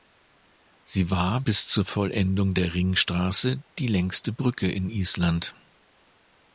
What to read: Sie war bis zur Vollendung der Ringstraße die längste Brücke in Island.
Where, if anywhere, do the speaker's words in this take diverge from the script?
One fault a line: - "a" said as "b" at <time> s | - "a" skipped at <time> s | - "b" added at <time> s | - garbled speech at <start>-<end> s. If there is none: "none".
none